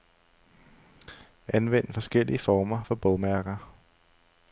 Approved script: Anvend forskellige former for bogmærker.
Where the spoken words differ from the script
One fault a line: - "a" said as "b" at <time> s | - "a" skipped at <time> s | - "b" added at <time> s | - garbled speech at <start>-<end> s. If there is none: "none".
none